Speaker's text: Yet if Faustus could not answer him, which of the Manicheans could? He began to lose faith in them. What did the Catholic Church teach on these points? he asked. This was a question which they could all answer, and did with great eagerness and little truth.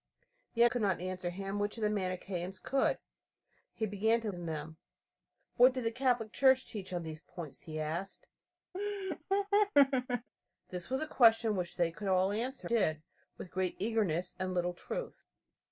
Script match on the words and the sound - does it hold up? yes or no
no